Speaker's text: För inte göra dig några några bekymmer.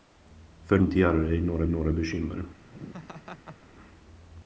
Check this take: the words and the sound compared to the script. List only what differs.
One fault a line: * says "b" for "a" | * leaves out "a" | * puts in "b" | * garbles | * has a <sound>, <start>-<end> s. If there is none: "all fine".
* has a laugh, 2.7-3.7 s